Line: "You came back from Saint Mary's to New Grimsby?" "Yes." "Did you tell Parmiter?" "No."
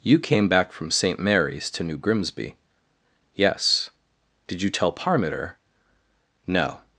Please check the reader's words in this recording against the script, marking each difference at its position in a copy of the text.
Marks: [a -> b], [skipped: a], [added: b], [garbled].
"You came back from Saint Mary's to New Grimsby?" "Yes." "Did you tell Parmiter?" "No."